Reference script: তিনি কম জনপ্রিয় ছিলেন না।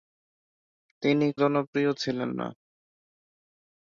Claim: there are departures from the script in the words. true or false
true